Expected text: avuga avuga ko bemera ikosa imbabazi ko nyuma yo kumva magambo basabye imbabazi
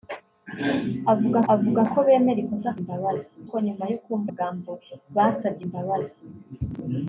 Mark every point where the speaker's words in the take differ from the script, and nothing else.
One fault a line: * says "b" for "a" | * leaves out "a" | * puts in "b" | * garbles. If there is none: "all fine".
all fine